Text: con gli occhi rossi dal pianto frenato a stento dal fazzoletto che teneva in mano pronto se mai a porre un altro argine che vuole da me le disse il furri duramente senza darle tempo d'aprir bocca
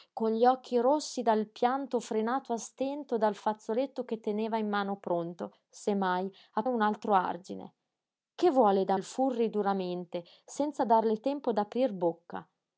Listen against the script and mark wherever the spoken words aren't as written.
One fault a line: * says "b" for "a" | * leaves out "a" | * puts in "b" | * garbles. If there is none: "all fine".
* leaves out "porre"
* leaves out "me le disse"